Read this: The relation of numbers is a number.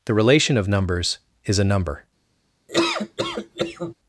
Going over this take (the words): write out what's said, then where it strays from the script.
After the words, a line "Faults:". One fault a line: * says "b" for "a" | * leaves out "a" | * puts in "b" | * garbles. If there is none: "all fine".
The relation of numbers is a number.
Faults:
all fine